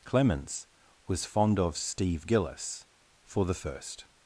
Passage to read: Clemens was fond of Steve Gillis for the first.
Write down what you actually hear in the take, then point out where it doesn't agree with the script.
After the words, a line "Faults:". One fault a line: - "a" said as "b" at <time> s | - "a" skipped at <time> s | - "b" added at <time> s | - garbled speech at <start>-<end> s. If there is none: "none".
Clemens was fond of Steve Gillis for the first.
Faults:
none